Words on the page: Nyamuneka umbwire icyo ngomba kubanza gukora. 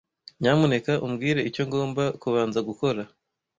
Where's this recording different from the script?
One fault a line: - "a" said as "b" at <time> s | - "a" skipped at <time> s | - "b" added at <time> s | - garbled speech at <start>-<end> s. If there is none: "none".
none